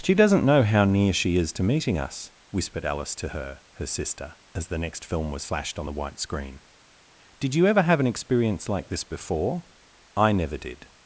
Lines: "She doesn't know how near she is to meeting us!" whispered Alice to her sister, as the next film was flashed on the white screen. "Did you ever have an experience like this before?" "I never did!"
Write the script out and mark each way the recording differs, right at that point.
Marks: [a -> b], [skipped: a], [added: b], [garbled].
"She doesn't know how near she is to meeting us!" whispered Alice to her [added: her] sister, as the next film was flashed on the white screen. "Did you ever have an experience like this before?" "I never did!"